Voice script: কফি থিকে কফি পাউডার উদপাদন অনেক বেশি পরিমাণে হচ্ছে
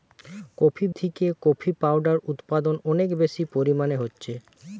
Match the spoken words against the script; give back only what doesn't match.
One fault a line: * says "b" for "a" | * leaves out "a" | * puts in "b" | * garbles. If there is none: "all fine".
all fine